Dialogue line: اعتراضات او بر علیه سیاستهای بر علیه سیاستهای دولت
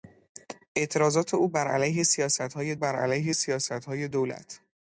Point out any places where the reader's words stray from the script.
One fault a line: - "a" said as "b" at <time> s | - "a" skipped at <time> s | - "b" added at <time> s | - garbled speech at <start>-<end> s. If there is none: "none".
none